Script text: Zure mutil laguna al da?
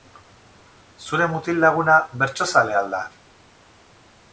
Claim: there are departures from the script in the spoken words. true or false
true